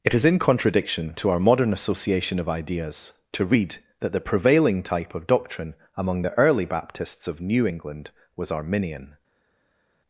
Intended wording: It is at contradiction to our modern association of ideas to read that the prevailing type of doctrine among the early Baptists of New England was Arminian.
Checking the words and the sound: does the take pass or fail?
fail